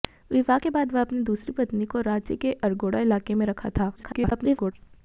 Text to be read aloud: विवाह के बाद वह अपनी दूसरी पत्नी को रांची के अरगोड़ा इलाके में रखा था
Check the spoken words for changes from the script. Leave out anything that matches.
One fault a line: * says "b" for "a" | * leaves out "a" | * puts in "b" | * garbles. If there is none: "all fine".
* garbles